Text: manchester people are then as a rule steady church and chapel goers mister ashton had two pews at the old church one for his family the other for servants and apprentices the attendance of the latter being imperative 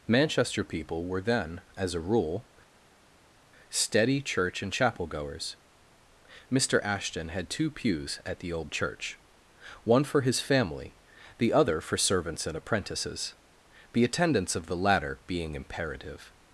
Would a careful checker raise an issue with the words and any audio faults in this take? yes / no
yes